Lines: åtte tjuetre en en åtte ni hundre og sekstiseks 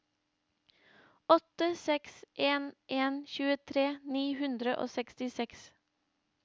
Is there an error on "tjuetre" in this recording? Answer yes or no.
yes